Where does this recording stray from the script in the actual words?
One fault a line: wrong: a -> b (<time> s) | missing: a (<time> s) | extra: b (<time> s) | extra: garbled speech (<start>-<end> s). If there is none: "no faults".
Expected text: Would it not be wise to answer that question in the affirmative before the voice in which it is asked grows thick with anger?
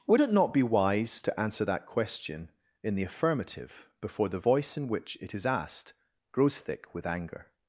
no faults